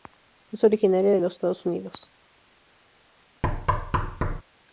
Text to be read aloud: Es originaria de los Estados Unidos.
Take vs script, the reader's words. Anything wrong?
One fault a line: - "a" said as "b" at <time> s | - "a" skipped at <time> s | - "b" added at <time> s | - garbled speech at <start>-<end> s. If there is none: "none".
none